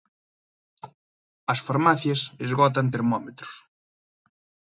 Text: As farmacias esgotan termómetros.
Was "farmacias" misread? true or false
false